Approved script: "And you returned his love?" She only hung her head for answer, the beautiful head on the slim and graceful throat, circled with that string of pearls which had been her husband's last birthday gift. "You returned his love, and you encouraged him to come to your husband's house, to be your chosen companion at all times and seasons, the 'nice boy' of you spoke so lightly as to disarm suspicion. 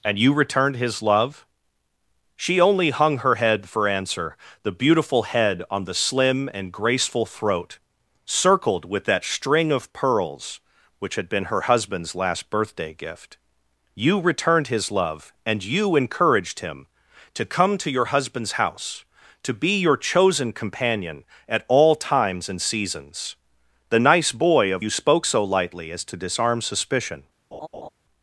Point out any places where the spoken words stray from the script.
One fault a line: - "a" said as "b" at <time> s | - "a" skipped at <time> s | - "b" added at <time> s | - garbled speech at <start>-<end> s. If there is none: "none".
none